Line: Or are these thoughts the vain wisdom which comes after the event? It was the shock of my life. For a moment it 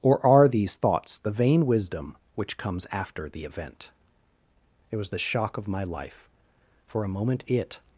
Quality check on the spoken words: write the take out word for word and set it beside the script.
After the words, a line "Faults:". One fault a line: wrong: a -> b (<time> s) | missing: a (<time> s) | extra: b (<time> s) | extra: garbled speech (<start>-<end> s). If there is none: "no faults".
Or are these thoughts the vain wisdom which comes after the event? It was the shock of my life. For a moment it
Faults:
no faults